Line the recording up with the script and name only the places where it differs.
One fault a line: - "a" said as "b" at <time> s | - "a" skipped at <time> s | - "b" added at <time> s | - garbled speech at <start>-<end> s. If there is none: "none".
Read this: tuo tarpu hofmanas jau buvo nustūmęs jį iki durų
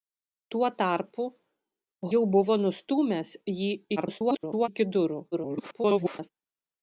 - "hofmanas" skipped at 1.2 s
- garbled speech at 4.0-4.7 s
- garbled speech at 5.3-6.3 s